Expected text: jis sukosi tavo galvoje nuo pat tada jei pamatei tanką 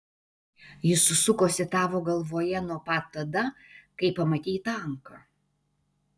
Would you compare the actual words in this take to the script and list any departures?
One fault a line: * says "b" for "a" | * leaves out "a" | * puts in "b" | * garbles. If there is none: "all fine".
* says "kai" for "jei"